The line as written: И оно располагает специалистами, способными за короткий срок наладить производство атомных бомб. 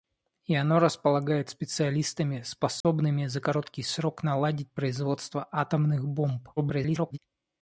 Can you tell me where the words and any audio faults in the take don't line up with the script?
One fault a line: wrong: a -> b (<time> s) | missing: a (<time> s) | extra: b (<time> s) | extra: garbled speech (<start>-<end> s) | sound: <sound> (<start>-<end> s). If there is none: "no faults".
sound: dropout (2.8-2.8 s)
extra: garbled speech (6.6-7.2 s)